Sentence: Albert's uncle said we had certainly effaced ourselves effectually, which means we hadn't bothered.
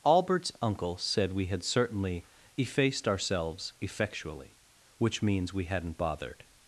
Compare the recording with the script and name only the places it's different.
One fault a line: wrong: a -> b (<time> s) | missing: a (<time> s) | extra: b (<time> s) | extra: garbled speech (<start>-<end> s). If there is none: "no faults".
no faults